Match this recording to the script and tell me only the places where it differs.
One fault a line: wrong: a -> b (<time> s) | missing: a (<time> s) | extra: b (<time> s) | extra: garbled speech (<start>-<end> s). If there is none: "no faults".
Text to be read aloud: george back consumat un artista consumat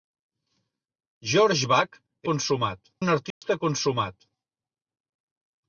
no faults